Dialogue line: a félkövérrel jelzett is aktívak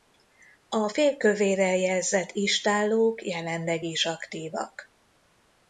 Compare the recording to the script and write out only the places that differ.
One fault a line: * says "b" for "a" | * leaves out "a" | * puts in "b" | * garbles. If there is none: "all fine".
* puts in "istállók jelenleg"